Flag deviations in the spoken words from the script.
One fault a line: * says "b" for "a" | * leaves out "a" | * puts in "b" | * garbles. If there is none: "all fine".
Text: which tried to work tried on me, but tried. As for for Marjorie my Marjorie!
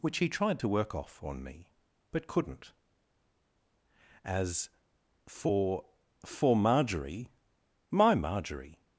* puts in "he"
* says "off" for "tried"
* says "couldn't" for "tried"